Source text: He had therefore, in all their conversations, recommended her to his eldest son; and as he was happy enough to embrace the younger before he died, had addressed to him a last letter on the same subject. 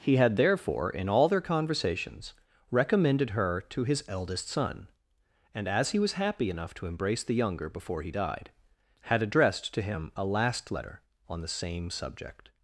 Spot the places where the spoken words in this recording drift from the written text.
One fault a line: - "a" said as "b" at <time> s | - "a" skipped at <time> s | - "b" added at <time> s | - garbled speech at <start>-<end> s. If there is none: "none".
none